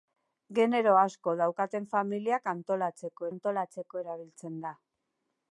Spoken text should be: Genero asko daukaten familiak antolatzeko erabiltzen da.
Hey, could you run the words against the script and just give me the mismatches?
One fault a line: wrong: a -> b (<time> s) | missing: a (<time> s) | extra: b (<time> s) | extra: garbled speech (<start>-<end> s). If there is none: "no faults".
extra: antolatzeko (3.3 s)